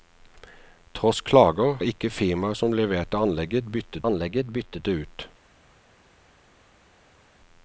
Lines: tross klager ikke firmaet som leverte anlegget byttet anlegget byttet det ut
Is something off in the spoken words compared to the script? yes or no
no